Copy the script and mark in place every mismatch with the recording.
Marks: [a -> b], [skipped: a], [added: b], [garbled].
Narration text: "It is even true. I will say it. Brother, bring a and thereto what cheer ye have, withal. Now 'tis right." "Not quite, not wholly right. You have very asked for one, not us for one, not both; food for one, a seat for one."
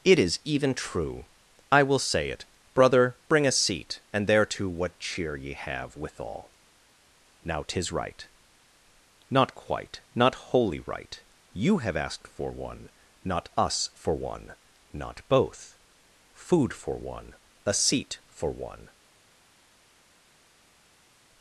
"It is even true. I will say it. Brother, bring a [added: seat] and thereto what cheer ye have, withal. Now 'tis right." "Not quite, not wholly right. You have [skipped: very] asked for one, not us for one, not both; food for one, a seat for one."